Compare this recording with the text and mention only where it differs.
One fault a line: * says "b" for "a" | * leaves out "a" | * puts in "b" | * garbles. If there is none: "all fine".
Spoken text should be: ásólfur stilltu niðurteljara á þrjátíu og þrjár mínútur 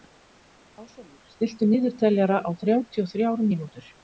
all fine